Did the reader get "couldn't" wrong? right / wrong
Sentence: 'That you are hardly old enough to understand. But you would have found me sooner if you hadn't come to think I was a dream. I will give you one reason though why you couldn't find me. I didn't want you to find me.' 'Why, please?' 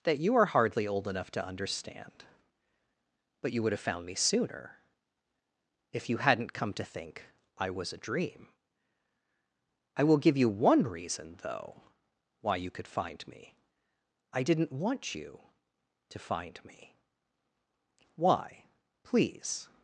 wrong